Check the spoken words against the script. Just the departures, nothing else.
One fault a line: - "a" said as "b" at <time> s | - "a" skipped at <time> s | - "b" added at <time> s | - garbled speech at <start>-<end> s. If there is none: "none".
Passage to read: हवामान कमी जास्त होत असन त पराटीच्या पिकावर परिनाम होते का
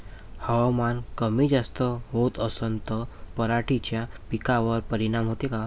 none